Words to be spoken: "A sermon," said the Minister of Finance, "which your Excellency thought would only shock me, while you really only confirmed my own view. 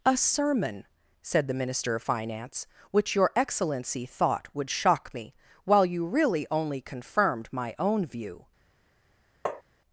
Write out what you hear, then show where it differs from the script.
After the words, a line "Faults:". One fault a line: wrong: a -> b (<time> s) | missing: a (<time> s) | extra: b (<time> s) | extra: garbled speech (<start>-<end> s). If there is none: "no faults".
"A sermon," said the Minister of Finance, "which your Excellency thought would shock me, while you really only confirmed my own view.
Faults:
missing: only (4.7 s)